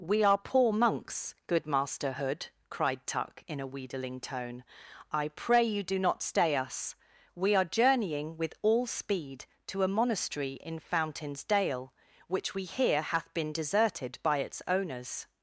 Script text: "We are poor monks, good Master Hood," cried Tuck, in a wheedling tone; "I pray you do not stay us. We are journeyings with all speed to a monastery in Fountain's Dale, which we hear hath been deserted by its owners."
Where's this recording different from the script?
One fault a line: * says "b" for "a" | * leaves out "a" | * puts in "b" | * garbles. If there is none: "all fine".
* says "journeying" for "journeyings"